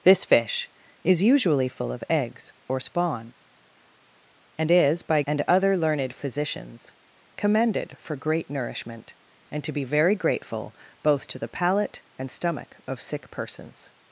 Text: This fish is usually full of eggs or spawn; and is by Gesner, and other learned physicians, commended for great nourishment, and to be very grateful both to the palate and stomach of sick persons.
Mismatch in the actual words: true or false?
true